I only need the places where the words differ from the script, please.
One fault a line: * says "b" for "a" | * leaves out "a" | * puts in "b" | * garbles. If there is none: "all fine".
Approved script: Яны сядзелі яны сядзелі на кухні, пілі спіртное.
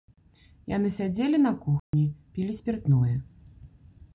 * leaves out "яны сядзелі"